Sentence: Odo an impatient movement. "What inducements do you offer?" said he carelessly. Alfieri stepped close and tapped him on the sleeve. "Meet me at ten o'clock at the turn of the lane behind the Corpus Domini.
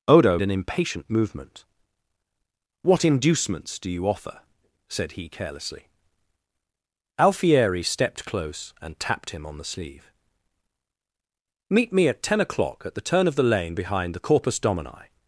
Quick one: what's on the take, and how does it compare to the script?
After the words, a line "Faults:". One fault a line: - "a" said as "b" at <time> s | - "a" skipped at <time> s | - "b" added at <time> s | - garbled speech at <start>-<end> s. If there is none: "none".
Odo an impatient movement. "What inducements do you offer?" said he carelessly. Alfieri stepped close and tapped him on the sleeve. "Meet me at ten o'clock at the turn of the lane behind the Corpus Domini.
Faults:
none